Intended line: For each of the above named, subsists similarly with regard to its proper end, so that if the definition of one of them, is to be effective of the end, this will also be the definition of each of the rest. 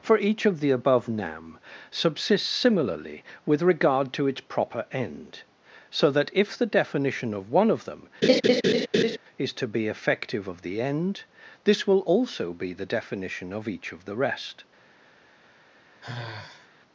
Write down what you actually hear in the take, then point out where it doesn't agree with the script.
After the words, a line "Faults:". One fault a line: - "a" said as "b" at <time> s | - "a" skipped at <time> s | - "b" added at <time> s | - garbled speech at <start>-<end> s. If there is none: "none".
For each of the above nam, subsists similarly with regard to its proper end, so that if the definition of one of them, is to be effective of the end, this will also be the definition of each of the rest.
Faults:
- "named" said as "nam" at 1.1 s